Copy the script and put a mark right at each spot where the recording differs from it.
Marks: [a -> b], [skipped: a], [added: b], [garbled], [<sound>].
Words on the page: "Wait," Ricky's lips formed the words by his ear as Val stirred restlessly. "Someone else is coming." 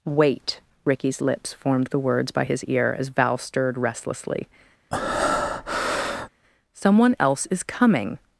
"Wait," Ricky's lips formed the words by his ear as Val stirred restlessly. [breath] "Someone else is coming."